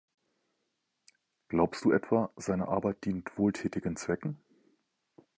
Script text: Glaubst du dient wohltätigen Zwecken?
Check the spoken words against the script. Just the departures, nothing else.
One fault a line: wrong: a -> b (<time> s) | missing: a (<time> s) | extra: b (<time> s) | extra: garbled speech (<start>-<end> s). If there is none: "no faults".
extra: etwa seine Arbeit (1.9 s)